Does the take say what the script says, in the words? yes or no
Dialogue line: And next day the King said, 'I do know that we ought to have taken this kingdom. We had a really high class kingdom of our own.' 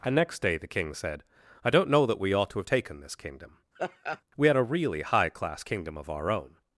no